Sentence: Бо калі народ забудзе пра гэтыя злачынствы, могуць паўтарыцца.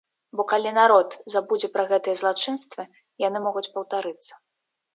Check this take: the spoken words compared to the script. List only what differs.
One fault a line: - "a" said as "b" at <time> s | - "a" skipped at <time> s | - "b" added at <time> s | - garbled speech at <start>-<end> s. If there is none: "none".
- "яны" added at 3.3 s